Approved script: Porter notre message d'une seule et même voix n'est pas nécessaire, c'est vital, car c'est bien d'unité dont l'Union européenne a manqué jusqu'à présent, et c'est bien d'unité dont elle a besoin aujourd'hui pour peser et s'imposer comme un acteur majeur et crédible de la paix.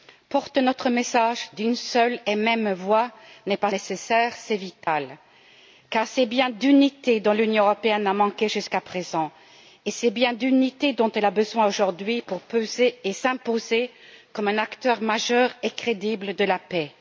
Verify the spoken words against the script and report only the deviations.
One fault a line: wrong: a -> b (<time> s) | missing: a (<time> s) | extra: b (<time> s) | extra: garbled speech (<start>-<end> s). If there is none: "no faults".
no faults